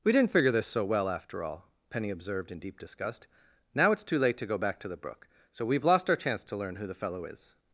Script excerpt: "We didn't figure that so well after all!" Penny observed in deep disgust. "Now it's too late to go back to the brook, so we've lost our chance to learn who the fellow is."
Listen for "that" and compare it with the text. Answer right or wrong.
wrong